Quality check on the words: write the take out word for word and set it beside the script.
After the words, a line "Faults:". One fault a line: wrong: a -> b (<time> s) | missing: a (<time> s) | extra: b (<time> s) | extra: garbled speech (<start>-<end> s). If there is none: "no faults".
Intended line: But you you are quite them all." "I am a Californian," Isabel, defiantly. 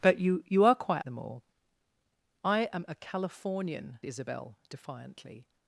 But you you are quite them all." "I am a Californian," Isabel, defiantly.
Faults:
no faults